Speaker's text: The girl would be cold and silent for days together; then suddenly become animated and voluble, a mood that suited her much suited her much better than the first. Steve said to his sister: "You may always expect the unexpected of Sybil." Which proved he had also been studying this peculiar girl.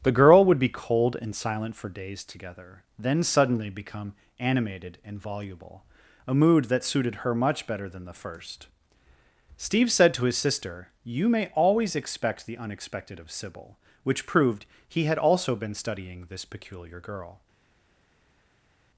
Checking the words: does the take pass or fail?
fail